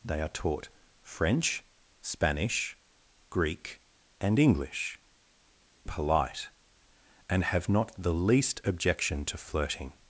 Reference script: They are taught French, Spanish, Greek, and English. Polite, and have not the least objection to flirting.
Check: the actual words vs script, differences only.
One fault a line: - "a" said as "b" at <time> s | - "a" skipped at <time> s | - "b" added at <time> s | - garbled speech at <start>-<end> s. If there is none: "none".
none